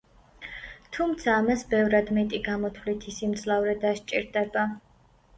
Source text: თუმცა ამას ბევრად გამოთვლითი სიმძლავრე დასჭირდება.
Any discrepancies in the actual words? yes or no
yes